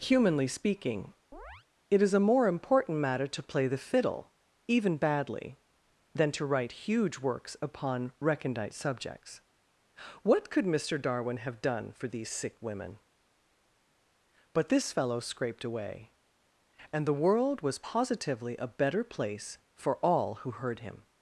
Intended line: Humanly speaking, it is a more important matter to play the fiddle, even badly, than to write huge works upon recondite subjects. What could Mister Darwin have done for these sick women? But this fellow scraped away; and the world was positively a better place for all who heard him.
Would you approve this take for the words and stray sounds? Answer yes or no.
no